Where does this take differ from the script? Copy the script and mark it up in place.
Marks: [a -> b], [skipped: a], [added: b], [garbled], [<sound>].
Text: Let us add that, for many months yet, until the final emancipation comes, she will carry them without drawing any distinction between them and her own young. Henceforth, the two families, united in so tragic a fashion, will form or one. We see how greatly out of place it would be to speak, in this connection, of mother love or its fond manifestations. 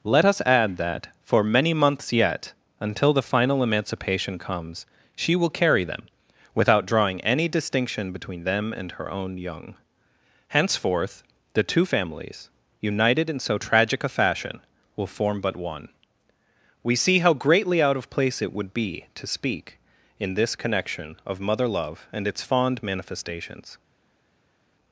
Let us add that, for many months yet, until the final emancipation comes, she will carry them without drawing any distinction between them and her own young. Henceforth, the two families, united in so tragic a fashion, will form [or -> but] one. We see how greatly out of place it would be to speak, in this connection, of mother love [or -> and] its fond manifestations.